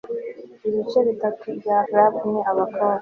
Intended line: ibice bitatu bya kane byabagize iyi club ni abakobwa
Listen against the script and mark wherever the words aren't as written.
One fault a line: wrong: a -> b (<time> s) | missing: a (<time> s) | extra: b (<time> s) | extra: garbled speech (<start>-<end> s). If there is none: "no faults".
missing: kane byabagize iyi (1.8 s)